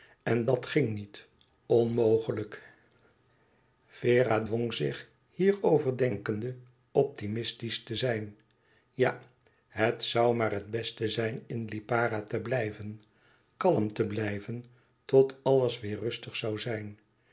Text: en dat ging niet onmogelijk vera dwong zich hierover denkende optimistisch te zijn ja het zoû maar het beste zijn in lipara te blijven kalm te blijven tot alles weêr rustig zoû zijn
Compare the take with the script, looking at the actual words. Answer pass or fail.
pass